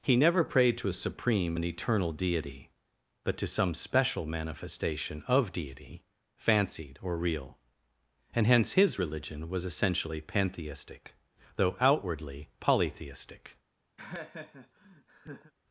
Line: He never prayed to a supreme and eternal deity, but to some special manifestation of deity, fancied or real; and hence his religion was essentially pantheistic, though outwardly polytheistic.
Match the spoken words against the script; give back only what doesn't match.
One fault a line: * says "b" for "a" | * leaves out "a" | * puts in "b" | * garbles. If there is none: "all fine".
all fine